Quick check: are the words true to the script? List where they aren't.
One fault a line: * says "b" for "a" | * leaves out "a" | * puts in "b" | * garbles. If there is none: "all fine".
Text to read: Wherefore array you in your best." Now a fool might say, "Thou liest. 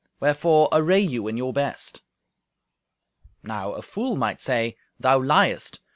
all fine